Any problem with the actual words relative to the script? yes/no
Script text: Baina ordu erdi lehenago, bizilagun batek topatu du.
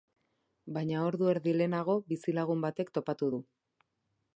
no